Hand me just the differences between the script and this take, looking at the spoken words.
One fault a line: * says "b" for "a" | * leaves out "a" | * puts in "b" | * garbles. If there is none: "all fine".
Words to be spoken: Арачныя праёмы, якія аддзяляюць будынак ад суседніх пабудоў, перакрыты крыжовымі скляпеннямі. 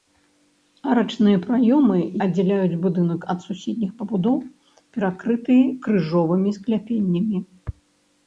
* leaves out "якія"